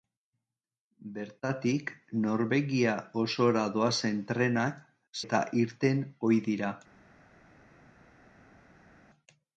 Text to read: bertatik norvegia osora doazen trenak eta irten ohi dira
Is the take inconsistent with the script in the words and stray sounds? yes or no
no